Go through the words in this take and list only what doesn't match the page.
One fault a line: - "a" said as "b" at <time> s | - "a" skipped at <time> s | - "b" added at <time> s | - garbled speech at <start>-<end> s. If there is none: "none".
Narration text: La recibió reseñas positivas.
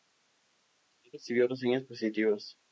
none